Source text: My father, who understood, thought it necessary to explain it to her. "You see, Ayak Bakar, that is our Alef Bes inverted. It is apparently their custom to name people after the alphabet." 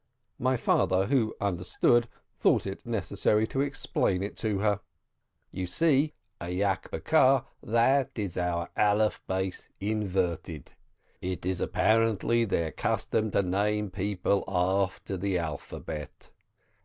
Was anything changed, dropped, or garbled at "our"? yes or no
no